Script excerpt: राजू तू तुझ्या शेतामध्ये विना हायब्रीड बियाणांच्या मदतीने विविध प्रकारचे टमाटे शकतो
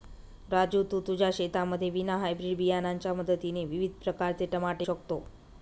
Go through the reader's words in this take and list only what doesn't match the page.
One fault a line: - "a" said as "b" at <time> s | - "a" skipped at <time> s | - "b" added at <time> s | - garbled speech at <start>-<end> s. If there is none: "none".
none